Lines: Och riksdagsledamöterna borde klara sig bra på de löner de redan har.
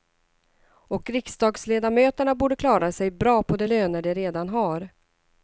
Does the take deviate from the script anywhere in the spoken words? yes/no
no